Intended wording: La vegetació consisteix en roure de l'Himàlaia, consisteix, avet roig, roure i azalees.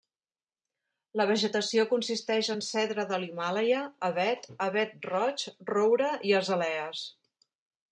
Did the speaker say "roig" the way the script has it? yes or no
yes